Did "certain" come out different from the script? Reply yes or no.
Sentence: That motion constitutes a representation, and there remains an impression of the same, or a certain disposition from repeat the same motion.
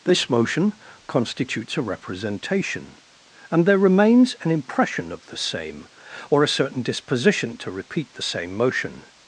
no